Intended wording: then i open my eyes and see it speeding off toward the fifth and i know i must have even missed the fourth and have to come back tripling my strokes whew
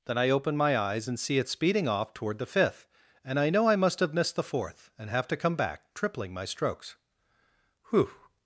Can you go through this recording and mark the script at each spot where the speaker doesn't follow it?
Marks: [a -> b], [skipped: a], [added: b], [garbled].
then i open my eyes and see it speeding off toward the fifth and i know i must have [skipped: even] missed the fourth and have to come back tripling my strokes whew